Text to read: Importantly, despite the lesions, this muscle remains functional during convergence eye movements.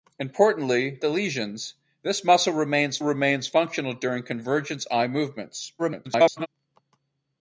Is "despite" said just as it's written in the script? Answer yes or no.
no